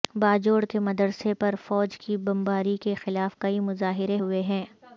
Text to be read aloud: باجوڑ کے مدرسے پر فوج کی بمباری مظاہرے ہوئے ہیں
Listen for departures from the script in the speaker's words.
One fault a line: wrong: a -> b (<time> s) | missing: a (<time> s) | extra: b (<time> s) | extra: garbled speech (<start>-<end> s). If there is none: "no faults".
extra: کے خلاف کئی (2.8 s)